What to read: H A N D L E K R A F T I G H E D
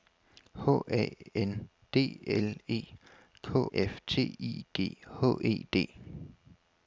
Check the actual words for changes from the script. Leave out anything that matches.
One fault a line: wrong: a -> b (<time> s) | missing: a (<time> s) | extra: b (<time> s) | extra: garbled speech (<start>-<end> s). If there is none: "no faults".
missing: R A (3.7 s)